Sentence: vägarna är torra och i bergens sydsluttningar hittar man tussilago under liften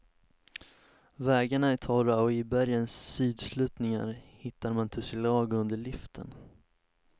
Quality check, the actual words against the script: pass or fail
pass